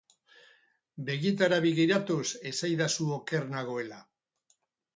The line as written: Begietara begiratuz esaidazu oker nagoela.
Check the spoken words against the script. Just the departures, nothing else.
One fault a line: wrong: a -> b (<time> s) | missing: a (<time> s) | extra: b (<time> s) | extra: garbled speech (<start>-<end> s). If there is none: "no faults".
no faults